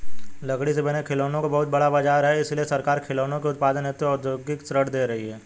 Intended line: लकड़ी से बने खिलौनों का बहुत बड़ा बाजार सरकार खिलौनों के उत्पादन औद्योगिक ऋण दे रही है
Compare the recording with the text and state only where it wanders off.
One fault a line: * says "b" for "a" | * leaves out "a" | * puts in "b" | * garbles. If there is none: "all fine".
* puts in "है इसलिए"
* puts in "हेतु"